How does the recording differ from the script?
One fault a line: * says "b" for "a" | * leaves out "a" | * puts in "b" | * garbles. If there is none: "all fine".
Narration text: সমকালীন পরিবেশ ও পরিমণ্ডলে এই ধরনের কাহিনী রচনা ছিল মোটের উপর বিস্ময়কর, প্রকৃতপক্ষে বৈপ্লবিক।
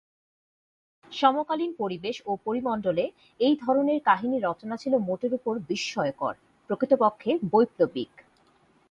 all fine